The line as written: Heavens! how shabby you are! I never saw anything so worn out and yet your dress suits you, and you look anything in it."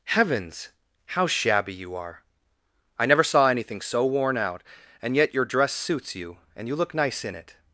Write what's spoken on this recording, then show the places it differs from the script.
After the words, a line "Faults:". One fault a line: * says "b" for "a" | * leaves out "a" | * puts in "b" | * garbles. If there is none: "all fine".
Heavens! how shabby you are! I never saw anything so worn out and yet your dress suits you, and you look nice in it."
Faults:
* says "nice" for "anything"